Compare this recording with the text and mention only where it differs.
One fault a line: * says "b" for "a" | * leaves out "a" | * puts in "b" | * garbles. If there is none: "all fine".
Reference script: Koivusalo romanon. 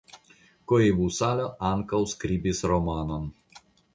* puts in "ankaŭ skribis"